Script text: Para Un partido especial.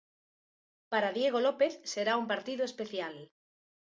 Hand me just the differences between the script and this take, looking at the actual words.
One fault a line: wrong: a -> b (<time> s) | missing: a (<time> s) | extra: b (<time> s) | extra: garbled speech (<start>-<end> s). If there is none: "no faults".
extra: Diego López será (1.2 s)